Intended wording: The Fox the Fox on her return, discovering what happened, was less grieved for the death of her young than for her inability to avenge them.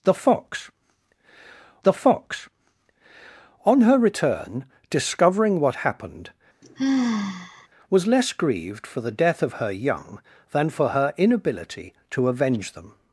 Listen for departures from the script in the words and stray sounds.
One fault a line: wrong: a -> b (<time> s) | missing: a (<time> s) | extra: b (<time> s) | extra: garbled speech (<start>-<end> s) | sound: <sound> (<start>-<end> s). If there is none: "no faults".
sound: sigh (6.6-7.7 s)